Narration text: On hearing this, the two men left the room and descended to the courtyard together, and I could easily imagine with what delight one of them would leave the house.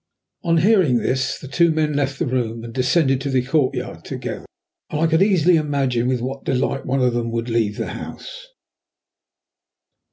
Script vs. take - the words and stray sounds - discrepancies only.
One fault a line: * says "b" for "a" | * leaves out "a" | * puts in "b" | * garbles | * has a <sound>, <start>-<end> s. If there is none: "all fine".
all fine